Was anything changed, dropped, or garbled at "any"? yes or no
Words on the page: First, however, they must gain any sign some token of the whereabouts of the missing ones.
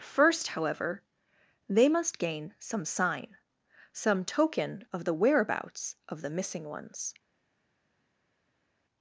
yes